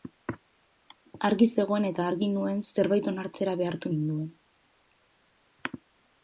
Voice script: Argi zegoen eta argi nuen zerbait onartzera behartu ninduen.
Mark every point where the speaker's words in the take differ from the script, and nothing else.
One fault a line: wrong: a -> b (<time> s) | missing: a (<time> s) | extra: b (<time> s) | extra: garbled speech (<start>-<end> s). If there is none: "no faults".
no faults